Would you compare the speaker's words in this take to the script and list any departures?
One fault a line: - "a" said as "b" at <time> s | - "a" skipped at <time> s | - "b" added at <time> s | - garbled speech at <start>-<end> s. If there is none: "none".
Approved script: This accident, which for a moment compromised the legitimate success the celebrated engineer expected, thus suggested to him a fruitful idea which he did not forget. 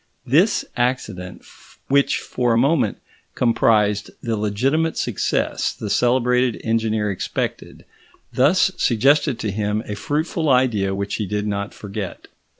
none